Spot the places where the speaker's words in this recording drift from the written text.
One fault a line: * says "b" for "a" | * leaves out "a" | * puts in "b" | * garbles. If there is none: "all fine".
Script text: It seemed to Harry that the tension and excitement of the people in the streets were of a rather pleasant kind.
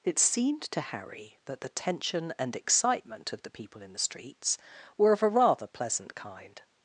all fine